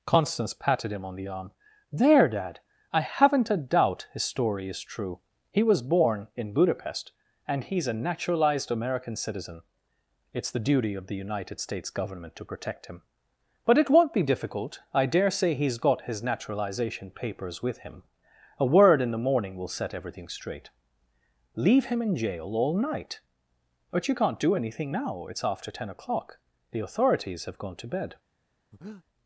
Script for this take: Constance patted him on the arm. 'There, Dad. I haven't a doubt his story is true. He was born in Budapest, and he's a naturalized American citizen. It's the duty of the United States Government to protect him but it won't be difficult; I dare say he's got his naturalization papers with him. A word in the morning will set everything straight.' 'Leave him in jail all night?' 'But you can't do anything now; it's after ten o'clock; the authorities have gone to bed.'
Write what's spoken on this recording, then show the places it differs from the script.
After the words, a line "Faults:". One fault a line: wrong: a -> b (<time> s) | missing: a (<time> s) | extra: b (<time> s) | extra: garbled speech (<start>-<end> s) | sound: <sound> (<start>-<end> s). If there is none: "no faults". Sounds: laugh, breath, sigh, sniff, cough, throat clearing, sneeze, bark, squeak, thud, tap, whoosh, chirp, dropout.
Constance patted him on the arm. 'There, Dad. I haven't a doubt his story is true. He was born in Budapest, and he's a naturalized American citizen. It's the duty of the United States Government to protect him but it won't be difficult; I dare say he's got his naturalization papers with him. A word in the morning will set everything straight.' 'Leave him in jail all night?' 'But you can't do anything now; it's after ten o'clock; the authorities have gone to bed.'
Faults:
sound: breath (28.7-29.0 s)